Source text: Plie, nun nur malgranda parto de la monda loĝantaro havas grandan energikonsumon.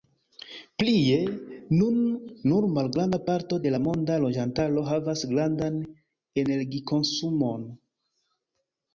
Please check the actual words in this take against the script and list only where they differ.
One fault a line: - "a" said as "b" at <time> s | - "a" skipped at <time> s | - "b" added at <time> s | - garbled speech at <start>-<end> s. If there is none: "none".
none